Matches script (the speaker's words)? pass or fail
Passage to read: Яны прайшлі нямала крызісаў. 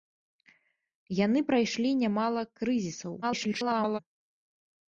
fail